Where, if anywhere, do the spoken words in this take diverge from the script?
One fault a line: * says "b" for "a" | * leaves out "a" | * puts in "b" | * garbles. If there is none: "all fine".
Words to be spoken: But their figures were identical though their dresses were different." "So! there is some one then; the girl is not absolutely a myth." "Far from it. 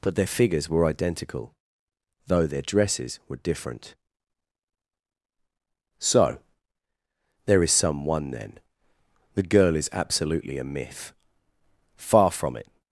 * leaves out "not"